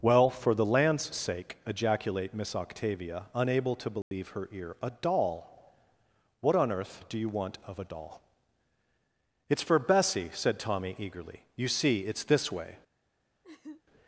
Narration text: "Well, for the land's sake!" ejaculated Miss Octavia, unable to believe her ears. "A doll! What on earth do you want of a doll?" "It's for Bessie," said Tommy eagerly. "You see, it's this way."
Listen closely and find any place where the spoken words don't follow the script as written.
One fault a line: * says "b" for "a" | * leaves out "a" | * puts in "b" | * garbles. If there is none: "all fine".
* says "ejaculate" for "ejaculated"
* says "ear" for "ears"